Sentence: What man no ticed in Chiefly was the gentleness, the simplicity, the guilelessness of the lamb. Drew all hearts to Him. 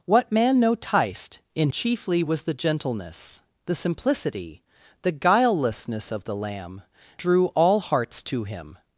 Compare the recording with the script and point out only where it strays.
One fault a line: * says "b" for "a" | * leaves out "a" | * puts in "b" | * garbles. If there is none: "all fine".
all fine